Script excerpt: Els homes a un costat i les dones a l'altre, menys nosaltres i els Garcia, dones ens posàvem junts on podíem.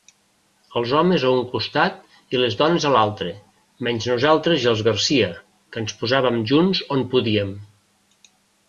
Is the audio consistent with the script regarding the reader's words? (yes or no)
no